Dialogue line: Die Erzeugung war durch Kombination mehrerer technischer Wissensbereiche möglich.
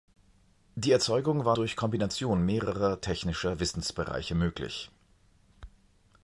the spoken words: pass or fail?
pass